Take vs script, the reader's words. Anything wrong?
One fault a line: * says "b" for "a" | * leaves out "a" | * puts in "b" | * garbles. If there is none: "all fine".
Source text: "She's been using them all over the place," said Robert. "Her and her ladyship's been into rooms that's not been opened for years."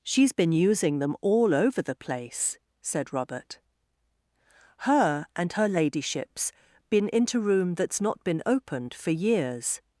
* says "room" for "rooms"